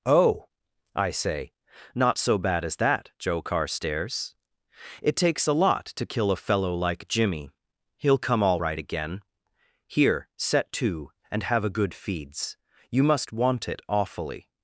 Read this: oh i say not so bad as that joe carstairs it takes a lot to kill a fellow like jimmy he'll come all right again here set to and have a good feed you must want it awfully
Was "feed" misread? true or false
true